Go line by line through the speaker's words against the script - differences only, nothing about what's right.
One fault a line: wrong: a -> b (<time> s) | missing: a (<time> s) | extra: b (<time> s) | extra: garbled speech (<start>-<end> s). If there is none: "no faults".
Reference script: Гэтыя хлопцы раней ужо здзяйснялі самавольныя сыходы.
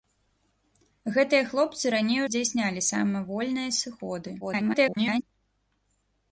missing: ужо (2.2 s)
extra: garbled speech (4.4-5.2 s)